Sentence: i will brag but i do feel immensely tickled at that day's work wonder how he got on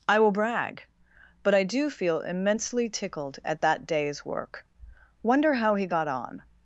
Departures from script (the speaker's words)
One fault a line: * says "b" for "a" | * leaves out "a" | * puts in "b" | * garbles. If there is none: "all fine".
all fine